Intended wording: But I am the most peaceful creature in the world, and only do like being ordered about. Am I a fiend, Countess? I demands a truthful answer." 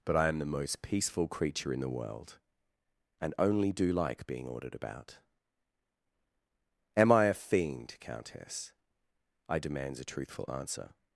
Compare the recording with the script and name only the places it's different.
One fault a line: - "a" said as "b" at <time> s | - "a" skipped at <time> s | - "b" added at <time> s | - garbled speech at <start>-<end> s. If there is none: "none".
none